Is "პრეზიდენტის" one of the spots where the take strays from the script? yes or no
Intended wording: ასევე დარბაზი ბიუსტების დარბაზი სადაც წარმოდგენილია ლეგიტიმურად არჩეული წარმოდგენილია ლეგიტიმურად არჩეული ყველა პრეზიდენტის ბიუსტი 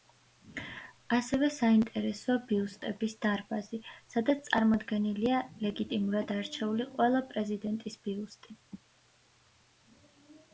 no